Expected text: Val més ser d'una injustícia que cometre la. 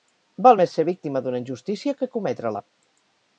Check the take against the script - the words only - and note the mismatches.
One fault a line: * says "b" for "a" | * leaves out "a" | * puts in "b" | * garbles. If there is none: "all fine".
* puts in "víctima"